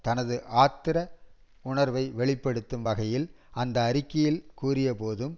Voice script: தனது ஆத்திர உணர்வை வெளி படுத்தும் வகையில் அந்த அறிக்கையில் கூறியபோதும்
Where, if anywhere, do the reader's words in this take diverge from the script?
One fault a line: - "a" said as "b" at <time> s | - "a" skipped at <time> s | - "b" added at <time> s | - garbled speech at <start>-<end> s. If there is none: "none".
none